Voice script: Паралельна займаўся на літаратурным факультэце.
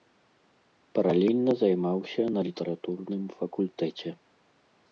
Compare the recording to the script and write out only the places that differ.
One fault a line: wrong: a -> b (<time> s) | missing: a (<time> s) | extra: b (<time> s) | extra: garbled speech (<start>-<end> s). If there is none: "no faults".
no faults